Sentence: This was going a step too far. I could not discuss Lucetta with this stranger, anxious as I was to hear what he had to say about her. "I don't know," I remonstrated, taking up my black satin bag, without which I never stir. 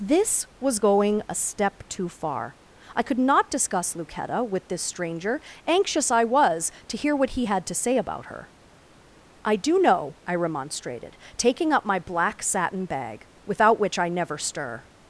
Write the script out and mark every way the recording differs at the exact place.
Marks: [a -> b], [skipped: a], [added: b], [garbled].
This was going a step too far. I could not discuss Lucetta with this stranger, anxious [skipped: as] I was to hear what he had to say about her. "I [don't -> do] know," I remonstrated, taking up my black satin bag, without which I never stir.